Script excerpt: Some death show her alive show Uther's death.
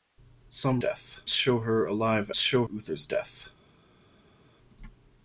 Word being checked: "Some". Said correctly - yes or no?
yes